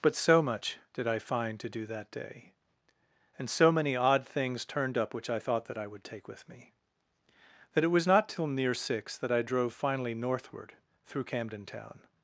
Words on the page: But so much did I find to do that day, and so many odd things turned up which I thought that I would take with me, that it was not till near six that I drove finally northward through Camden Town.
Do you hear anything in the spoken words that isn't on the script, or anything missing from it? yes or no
no